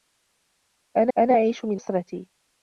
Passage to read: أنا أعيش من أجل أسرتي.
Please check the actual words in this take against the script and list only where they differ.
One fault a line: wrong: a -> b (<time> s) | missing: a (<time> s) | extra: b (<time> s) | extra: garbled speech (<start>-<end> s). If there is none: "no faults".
extra: أنا (1.2 s)
missing: أجل (1.8 s)